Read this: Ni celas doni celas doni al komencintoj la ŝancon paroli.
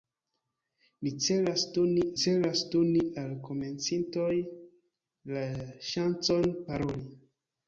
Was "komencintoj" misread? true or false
false